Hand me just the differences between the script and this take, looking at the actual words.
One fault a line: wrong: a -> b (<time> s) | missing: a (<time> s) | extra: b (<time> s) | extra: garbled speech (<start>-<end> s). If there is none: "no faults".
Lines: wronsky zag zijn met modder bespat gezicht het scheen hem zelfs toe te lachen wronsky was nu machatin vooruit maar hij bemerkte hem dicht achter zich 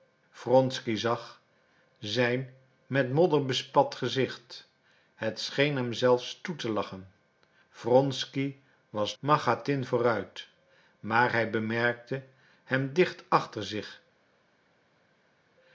missing: nu (9.2 s)